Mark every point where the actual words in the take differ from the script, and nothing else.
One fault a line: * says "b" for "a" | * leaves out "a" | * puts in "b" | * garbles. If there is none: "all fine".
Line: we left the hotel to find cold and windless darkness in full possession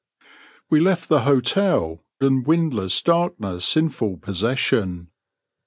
* leaves out "to find cold"